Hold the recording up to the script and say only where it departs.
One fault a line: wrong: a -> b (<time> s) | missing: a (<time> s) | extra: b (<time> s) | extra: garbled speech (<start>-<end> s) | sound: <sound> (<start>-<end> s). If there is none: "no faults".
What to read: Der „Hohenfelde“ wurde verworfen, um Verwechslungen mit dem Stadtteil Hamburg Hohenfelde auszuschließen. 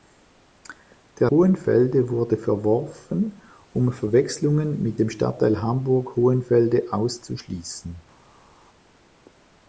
no faults